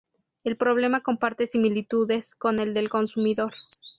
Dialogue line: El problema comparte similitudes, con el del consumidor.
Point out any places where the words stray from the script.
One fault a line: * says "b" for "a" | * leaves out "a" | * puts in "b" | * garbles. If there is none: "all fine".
all fine